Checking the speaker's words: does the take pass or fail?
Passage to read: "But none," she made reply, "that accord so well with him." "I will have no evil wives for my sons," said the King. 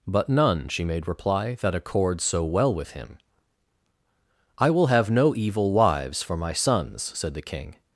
pass